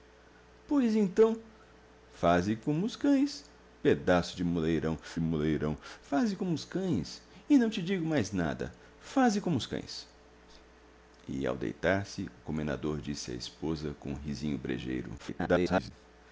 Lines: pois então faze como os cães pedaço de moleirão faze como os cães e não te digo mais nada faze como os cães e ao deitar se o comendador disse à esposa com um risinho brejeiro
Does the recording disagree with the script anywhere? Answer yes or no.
yes